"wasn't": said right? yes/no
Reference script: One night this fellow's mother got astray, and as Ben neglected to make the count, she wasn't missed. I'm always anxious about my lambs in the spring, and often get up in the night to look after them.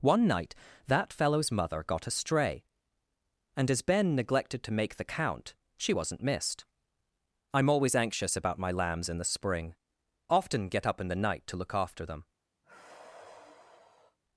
yes